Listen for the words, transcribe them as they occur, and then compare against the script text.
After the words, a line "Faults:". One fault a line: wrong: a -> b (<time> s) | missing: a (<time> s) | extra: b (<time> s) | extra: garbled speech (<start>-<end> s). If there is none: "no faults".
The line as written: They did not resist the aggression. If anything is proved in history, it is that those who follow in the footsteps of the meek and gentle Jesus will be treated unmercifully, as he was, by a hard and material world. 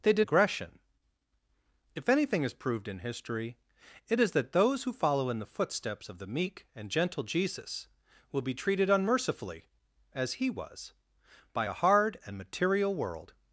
They did aggression. If anything is proved in history, it is that those who follow in the footsteps of the meek and gentle Jesus will be treated unmercifully, as he was, by a hard and material world.
Faults:
missing: not resist the (0.3 s)